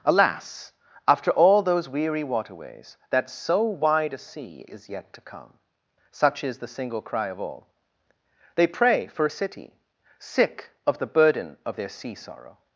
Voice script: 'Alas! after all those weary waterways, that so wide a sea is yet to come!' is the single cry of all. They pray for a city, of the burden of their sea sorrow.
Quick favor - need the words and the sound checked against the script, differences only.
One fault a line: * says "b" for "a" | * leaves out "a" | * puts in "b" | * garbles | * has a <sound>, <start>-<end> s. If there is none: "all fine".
* puts in "such"
* puts in "sick"